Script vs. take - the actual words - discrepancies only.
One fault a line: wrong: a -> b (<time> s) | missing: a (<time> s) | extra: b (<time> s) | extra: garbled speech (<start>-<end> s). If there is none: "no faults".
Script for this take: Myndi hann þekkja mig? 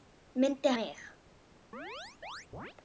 missing: hann þekkja (0.7 s)